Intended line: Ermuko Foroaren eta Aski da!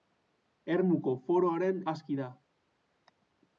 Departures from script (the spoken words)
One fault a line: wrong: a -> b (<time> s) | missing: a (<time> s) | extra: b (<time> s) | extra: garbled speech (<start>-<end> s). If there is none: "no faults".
missing: eta (1.8 s)